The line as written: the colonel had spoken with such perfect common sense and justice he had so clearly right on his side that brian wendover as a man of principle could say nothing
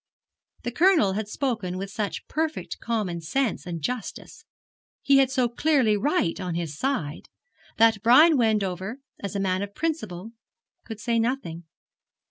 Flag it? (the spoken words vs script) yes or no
no